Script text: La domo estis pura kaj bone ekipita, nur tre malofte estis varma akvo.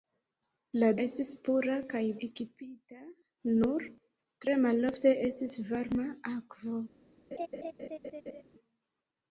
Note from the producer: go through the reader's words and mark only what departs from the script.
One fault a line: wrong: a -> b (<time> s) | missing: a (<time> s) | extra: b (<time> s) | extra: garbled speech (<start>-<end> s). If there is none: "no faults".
missing: domo (0.9 s)
missing: bone (2.0 s)